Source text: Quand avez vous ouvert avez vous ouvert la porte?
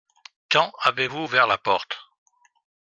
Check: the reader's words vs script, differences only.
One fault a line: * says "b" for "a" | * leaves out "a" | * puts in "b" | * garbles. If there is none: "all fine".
* leaves out "avez vous ouvert"